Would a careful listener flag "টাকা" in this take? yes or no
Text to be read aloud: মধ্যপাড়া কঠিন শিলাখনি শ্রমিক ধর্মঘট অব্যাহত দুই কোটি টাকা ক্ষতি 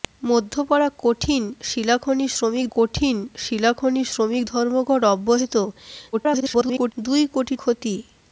yes